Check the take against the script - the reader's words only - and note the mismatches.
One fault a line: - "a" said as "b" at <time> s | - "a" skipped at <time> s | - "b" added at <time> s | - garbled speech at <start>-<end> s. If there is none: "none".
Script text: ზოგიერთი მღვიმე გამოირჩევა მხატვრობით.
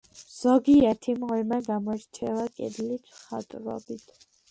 - "კედლის" added at 2.5 s